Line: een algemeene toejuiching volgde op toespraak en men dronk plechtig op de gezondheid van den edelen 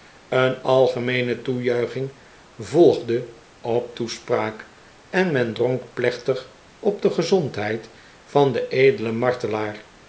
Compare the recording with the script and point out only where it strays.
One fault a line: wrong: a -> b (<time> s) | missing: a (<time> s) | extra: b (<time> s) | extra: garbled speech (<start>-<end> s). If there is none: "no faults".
no faults